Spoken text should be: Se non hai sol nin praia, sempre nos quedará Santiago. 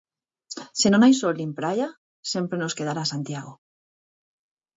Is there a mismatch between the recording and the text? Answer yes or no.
no